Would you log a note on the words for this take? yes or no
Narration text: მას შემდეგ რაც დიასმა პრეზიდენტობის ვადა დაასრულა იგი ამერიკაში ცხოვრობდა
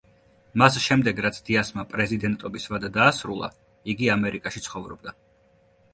no